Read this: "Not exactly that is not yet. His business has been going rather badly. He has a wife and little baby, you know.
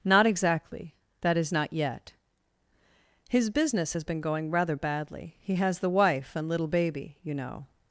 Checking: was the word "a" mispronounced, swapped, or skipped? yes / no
yes